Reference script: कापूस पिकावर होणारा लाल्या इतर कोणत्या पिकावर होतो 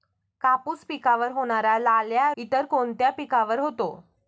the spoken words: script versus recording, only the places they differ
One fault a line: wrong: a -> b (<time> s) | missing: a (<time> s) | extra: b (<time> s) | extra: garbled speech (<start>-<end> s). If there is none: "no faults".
no faults